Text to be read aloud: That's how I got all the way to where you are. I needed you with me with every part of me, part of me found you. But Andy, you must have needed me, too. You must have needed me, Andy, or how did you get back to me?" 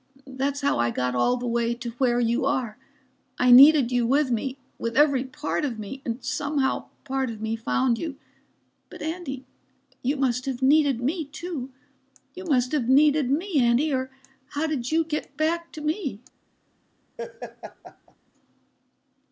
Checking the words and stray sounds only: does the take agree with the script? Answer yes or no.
no